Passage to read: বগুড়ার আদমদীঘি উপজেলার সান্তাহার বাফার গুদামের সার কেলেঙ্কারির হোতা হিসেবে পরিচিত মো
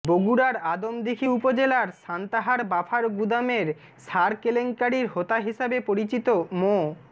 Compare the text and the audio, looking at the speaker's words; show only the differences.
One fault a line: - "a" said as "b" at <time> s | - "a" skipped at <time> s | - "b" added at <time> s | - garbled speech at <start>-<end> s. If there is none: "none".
none